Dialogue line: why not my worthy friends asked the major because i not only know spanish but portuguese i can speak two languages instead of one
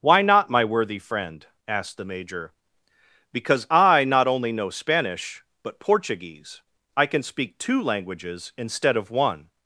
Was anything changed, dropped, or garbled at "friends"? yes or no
yes